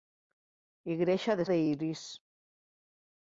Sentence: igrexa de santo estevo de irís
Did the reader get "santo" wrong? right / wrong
wrong